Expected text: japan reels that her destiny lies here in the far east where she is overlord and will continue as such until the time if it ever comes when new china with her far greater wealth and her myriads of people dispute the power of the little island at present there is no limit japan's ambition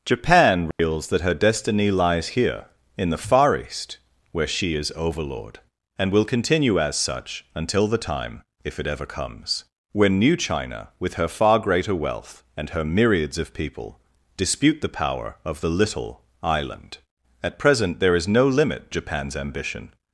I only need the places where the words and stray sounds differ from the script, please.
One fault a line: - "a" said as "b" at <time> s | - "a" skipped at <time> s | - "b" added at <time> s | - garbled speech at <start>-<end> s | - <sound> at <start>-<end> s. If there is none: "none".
- dropout at 0.7-0.8 s